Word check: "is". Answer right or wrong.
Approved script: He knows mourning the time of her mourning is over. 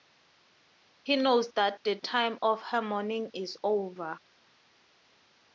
right